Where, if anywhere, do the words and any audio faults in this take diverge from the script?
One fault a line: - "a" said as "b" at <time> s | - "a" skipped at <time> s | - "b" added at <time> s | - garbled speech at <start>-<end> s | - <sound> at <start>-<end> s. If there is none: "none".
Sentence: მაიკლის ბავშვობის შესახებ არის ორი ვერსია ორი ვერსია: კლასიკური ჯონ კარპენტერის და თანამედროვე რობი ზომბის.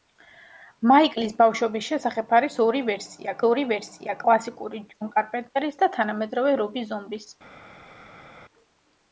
none